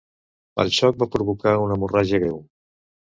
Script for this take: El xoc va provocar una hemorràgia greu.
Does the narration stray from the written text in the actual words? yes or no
no